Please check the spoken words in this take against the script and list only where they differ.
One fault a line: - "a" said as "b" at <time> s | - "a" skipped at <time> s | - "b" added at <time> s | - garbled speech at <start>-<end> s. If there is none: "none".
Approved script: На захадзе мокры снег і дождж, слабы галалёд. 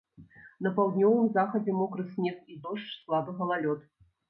- "паўднёвым" added at 0.8 s